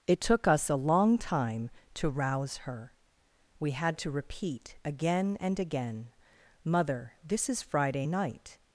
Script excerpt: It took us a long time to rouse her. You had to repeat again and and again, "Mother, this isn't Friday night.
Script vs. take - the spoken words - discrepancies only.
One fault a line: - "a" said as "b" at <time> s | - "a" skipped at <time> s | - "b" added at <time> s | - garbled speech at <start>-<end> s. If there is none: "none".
- "You" said as "We" at 3.6 s
- "and" skipped at 5.6 s
- "isn't" said as "is" at 7.5 s